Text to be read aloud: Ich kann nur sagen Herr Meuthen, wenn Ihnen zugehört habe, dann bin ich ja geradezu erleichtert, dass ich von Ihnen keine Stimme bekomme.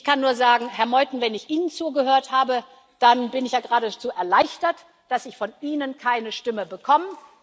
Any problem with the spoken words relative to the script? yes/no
yes